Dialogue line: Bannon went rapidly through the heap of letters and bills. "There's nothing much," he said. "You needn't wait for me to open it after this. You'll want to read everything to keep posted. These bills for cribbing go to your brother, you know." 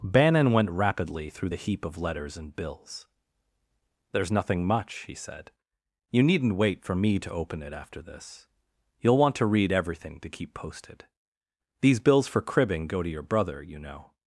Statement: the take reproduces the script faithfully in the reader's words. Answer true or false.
true